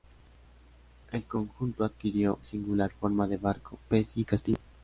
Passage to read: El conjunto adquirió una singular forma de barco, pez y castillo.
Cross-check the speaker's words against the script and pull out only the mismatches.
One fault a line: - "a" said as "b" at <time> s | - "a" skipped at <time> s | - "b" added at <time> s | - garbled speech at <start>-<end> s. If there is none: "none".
- "una" skipped at 2.4 s